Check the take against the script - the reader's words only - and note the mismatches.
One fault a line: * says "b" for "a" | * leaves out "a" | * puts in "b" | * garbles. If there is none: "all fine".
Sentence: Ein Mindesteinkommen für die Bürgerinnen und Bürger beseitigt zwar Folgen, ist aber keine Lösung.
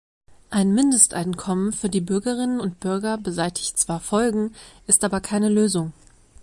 all fine